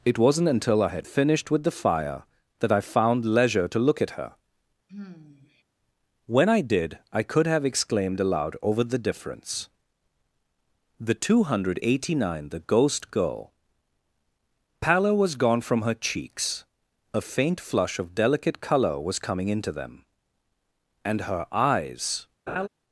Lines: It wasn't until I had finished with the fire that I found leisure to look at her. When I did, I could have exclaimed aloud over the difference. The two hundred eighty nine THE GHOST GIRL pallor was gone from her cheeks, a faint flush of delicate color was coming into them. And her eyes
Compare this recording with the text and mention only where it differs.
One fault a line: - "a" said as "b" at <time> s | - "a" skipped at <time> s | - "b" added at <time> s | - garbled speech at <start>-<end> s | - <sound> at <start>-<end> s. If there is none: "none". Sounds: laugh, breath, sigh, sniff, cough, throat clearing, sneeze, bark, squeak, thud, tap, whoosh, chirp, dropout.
- sigh at 4.9-5.6 s
- laugh at 22.5-22.7 s